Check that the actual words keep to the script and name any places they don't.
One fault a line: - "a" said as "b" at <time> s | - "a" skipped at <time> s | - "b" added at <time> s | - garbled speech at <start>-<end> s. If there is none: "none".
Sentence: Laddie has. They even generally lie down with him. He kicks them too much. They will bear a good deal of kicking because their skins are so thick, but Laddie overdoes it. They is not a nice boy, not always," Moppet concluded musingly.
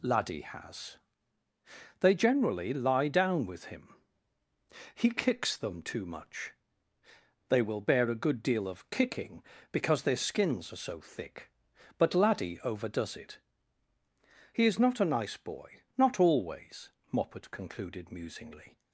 - "even" skipped at 2.1 s
- "They" said as "He" at 14.5 s